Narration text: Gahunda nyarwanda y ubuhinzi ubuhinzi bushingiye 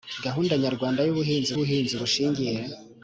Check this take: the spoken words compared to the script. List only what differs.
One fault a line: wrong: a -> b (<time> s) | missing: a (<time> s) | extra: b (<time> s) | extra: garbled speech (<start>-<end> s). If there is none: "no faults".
no faults